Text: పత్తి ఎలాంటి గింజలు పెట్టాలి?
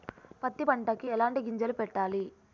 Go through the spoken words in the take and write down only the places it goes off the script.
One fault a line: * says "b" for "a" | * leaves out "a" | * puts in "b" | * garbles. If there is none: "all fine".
* puts in "పంటకి"